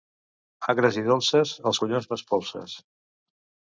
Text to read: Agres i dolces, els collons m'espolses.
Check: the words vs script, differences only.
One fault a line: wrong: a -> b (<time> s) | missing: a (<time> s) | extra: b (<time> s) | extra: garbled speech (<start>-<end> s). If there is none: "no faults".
no faults